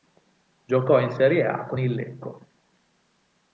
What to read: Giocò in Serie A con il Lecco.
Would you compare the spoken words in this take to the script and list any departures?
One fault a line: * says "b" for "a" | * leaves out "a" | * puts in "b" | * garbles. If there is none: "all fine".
all fine